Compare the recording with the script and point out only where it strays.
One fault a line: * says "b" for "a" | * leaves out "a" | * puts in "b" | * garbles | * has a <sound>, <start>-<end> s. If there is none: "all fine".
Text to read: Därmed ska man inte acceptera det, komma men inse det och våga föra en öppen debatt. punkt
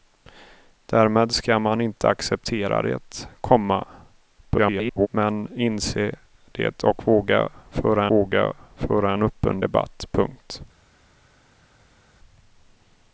* garbles
* puts in "våga föra"